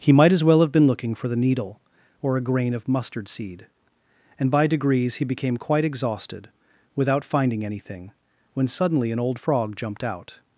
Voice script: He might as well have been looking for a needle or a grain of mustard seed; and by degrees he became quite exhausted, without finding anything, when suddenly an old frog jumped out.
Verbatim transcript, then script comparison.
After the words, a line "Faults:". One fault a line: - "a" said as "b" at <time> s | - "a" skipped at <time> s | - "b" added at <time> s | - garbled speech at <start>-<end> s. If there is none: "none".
He might as well have been looking for the needle or a grain of mustard seed; and by degrees he became quite exhausted, without finding anything, when suddenly an old frog jumped out.
Faults:
- "a" said as "the" at 1.3 s